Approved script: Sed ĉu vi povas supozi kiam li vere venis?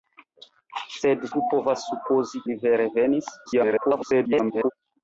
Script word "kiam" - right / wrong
wrong